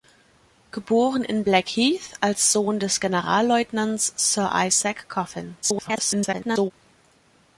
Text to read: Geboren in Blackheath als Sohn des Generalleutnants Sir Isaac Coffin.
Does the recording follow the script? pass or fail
fail